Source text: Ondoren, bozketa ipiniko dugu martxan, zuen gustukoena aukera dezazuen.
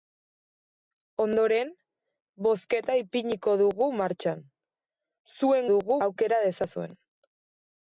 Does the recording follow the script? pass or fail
fail